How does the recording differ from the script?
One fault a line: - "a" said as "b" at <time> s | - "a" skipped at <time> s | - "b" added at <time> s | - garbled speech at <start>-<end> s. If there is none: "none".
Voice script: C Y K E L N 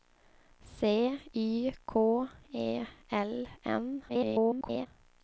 - garbled speech at 4.1-4.9 s